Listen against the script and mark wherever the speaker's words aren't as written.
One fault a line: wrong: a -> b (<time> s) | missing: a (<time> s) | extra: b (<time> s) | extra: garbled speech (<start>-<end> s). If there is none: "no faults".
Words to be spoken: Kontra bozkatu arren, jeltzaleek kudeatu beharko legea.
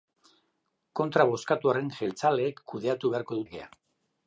no faults